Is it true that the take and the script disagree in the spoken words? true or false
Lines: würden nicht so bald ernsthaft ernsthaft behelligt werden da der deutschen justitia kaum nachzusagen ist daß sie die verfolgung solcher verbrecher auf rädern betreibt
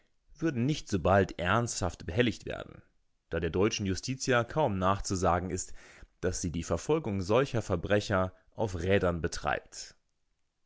true